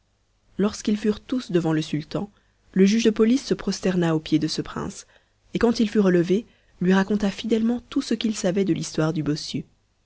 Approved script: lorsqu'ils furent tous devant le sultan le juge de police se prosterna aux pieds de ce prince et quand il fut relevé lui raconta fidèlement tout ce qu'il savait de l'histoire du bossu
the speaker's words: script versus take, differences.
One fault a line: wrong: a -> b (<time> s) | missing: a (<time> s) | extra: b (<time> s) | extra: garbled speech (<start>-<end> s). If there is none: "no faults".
no faults